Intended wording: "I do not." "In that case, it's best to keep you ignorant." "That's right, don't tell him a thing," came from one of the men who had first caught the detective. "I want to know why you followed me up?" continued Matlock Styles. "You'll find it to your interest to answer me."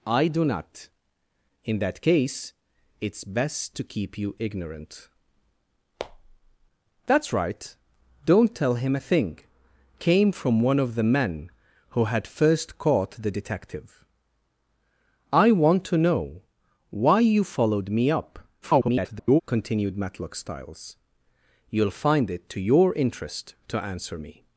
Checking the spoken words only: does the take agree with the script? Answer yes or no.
no